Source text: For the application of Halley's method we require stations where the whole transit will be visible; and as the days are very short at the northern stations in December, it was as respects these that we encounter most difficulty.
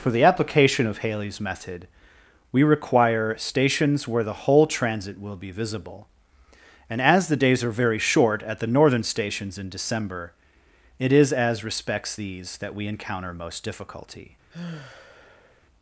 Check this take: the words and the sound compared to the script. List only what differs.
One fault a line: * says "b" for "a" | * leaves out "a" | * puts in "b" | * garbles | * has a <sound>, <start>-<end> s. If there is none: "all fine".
* says "is" for "was"
* has a sigh, 14.5-15.6 s